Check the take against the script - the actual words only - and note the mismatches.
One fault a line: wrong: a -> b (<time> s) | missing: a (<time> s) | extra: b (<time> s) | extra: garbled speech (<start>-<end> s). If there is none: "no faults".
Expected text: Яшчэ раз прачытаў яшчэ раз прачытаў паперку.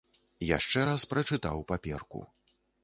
missing: яшчэ раз прачытаў (1.7 s)